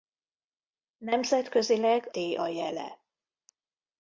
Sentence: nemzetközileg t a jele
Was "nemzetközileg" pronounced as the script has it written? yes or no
yes